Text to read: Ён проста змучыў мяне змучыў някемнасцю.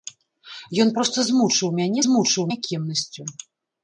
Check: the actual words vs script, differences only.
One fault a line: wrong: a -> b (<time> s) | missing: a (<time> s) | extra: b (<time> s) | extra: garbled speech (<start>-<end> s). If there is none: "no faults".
no faults